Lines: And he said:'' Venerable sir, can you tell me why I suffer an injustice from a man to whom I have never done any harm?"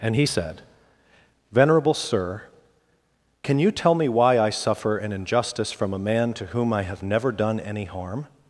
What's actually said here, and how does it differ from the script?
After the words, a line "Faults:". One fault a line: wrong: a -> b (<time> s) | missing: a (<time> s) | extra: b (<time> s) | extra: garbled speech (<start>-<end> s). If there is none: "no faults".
And he said:'' Venerable sir, can you tell me why I suffer an injustice from a man to whom I have never done any harm?"
Faults:
no faults